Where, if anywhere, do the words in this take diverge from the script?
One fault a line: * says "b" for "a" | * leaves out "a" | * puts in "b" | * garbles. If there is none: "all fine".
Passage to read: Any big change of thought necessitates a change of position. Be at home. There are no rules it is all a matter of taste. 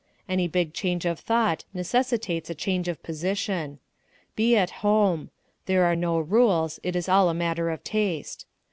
all fine